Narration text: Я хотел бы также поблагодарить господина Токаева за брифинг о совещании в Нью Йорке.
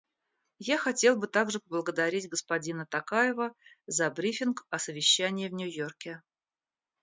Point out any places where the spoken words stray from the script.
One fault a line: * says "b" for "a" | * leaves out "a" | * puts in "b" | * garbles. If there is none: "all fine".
all fine